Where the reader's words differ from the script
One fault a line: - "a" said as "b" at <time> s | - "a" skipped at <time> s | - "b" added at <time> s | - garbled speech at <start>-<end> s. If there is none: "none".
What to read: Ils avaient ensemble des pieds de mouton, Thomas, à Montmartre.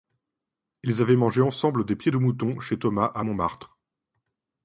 - "mangé" added at 1.1 s
- "chez" added at 2.6 s